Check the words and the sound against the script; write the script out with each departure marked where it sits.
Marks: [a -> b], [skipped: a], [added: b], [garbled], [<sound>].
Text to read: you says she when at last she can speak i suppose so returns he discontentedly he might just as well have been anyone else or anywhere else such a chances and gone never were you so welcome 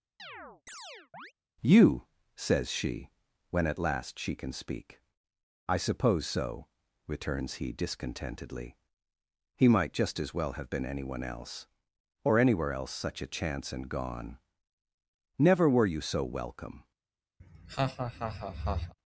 [chirp] you says she when at last she can speak i suppose so returns he discontentedly he might just as well have been anyone else or anywhere else such a [chances -> chance] and gone never were you so welcome [laugh]